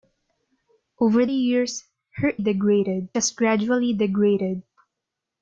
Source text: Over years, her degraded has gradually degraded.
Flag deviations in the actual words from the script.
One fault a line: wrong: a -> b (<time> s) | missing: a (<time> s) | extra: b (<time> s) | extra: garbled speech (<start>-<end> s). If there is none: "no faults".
no faults